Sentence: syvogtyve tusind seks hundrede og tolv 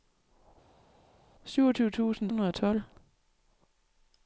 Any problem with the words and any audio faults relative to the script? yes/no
yes